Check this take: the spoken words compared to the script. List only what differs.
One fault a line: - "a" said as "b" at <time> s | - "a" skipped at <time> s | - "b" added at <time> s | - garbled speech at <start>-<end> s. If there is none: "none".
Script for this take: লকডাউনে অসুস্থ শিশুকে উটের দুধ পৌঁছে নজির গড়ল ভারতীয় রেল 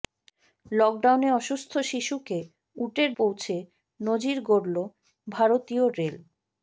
- "দুধ" skipped at 3.1 s